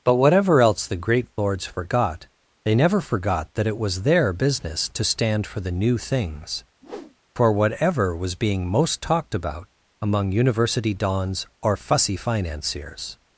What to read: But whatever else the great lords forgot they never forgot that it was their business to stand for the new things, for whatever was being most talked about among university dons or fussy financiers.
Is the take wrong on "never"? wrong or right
right